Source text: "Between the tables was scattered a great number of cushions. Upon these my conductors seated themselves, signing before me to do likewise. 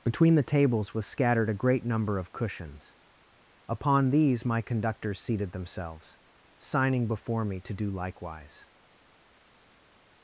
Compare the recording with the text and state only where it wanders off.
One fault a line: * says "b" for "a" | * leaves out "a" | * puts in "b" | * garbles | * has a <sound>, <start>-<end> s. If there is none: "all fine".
all fine